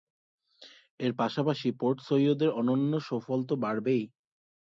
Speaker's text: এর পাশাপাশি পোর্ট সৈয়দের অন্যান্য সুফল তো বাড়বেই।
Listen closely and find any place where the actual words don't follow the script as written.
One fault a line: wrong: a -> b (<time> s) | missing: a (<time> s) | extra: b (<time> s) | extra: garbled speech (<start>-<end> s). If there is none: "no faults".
no faults